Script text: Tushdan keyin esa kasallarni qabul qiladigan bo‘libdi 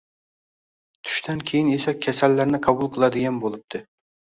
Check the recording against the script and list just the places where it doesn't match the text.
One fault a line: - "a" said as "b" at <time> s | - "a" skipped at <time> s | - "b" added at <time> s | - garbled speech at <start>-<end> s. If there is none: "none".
none